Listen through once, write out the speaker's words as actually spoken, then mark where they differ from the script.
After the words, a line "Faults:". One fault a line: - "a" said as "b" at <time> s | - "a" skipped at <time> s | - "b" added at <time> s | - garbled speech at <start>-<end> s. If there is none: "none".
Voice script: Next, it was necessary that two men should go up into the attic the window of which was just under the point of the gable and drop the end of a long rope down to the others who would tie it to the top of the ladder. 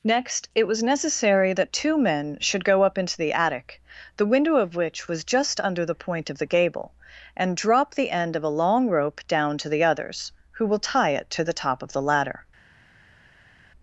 Next, it was necessary that two men should go up into the attic the window of which was just under the point of the gable and drop the end of a long rope down to the others who will tie it to the top of the ladder.
Faults:
- "would" said as "will" at 10.6 s